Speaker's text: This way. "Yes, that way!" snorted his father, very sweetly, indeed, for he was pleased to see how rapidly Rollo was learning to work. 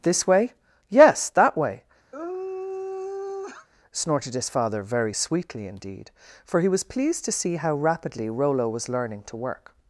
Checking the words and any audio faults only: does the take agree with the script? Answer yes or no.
no